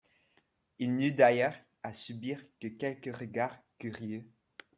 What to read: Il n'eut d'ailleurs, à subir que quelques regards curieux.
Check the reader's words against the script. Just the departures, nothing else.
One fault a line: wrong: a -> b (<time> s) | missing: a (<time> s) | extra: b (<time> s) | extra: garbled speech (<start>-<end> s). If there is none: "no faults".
no faults